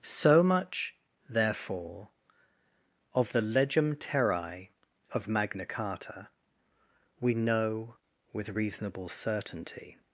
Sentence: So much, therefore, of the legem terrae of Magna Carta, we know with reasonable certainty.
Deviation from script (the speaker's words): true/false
false